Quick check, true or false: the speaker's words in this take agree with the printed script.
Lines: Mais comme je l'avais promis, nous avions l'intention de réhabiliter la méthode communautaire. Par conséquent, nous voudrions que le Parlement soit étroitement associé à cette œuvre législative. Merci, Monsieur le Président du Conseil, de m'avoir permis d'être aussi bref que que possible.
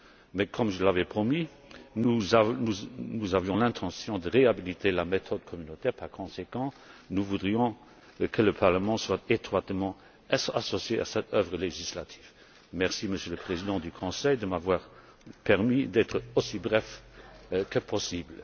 false